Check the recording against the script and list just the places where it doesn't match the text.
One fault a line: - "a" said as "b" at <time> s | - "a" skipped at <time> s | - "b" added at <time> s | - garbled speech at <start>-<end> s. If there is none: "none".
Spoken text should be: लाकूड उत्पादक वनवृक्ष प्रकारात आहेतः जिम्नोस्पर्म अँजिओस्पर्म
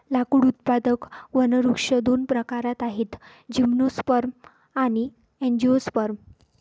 - "दोन" added at 2.0 s
- "आणि" added at 4.7 s